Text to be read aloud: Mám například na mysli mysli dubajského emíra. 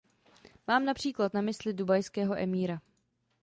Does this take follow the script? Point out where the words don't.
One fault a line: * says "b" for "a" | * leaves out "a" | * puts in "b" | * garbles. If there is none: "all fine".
* leaves out "mysli"